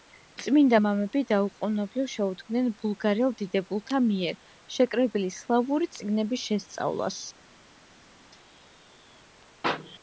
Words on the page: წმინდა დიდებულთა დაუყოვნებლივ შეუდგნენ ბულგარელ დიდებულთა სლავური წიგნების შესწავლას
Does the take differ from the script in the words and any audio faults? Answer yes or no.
yes